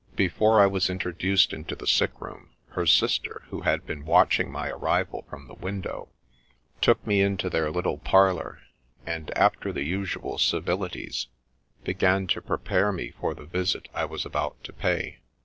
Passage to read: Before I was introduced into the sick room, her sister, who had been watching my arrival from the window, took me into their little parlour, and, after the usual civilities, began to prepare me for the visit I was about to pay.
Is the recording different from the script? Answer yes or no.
no